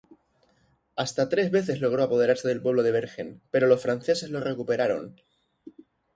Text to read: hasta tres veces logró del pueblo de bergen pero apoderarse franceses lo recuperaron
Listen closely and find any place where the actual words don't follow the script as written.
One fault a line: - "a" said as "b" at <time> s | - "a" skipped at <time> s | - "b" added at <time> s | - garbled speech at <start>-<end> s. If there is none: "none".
- "apoderarse" added at 2.0 s
- "apoderarse" said as "los" at 3.7 s